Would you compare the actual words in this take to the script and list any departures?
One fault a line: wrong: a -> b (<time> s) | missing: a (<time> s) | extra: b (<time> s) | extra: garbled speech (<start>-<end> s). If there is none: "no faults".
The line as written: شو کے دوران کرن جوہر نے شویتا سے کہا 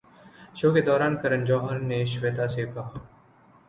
no faults